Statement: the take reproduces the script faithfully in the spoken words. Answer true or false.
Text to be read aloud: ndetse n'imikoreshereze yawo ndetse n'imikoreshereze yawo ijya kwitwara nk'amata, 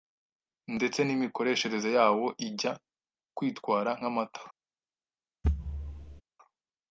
false